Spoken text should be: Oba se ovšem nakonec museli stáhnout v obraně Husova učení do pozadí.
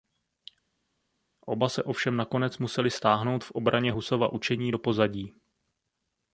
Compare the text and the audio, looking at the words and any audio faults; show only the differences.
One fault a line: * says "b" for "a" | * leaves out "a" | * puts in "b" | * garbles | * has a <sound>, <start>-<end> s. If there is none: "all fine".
all fine